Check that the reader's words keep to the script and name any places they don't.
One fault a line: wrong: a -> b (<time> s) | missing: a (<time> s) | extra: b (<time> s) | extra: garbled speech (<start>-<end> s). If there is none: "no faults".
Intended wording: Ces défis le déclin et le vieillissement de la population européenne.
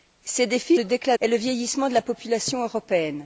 no faults